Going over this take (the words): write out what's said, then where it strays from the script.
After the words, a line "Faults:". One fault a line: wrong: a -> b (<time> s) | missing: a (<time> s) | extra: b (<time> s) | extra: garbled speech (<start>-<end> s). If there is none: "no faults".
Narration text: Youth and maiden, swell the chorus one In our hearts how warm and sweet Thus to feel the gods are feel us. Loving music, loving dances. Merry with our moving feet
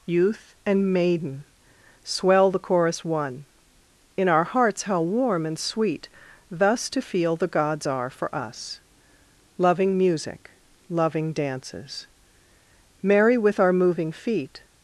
Youth and maiden, swell the chorus one In our hearts how warm and sweet Thus to feel the gods are for us. Loving music, loving dances. Merry with our moving feet
Faults:
wrong: feel -> for (8.1 s)